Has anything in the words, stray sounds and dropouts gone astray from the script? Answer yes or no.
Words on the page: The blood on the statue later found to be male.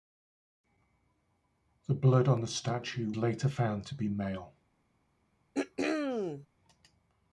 yes